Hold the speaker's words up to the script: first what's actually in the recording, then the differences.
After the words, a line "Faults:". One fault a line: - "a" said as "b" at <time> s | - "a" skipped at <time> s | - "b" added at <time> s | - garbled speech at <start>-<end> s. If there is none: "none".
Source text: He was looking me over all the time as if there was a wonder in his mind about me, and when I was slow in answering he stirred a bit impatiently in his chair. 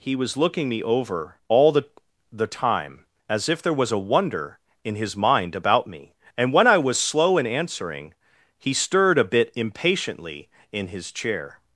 He was looking me over all the the time as if there was a wonder in his mind about me, and when I was slow in answering he stirred a bit impatiently in his chair.
Faults:
- "the" added at 2.3 s